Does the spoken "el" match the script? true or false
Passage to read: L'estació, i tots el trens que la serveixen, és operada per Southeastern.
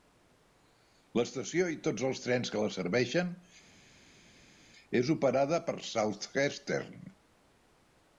false